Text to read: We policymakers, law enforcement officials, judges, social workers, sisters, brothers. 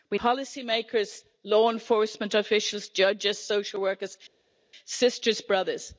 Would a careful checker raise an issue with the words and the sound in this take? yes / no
no